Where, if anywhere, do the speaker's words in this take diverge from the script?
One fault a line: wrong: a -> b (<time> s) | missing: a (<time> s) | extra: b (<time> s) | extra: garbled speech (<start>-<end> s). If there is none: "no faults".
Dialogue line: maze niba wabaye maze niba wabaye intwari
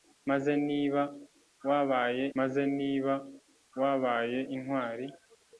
no faults